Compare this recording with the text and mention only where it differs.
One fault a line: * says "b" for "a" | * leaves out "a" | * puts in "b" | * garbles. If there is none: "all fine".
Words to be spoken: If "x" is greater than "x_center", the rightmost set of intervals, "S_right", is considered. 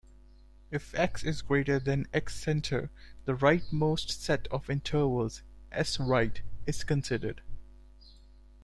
all fine